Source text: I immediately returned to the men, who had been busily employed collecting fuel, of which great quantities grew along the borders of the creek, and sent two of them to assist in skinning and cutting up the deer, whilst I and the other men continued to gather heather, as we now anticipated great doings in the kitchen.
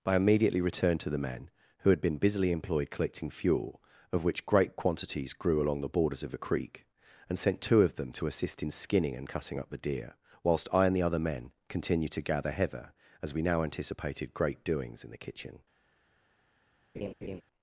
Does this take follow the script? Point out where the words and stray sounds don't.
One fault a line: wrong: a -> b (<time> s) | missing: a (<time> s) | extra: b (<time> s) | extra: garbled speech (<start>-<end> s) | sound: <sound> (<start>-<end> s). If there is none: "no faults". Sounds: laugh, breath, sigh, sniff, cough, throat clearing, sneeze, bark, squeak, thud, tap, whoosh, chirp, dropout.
sound: laugh (16.9-17.4 s)